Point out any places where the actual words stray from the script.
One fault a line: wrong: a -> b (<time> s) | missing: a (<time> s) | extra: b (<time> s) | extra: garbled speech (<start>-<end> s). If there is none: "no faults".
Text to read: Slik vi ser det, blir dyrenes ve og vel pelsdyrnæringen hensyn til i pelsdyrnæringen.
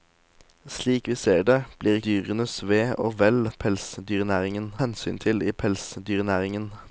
no faults